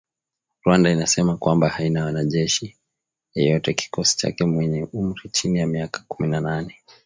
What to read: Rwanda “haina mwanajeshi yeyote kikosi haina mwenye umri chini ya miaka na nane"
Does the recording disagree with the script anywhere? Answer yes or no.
yes